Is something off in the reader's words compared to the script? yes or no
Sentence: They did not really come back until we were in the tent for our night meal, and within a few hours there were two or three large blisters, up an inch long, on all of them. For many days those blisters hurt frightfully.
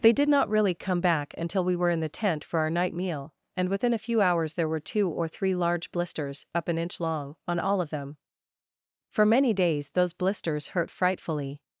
no